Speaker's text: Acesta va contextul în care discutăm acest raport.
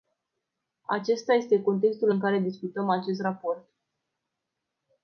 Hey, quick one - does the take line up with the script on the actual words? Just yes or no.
no